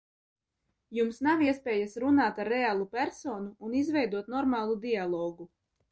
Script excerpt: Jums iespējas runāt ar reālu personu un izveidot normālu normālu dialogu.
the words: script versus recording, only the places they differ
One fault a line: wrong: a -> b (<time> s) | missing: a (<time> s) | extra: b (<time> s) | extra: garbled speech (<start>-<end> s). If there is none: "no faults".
extra: nav (1.3 s)
missing: normālu (4.8 s)